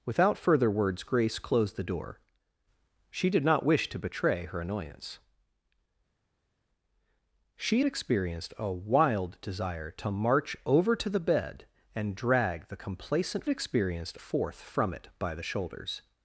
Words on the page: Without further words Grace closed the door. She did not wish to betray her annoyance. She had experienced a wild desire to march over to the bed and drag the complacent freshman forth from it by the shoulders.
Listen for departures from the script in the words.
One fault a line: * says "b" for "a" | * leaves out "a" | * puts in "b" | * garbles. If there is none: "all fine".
* leaves out "had"
* says "experienced" for "freshman"